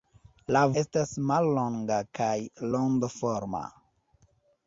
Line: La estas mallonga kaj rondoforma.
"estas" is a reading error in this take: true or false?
false